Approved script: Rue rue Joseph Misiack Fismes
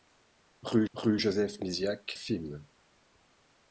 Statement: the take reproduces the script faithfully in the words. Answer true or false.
true